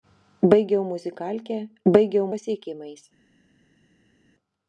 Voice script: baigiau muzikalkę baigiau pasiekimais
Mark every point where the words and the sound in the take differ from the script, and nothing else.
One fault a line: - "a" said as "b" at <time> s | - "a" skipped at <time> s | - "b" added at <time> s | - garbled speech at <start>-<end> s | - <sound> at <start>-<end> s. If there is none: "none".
none